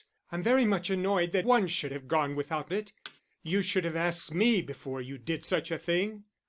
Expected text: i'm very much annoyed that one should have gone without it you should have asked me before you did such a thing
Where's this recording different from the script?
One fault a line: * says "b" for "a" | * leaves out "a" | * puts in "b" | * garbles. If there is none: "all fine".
all fine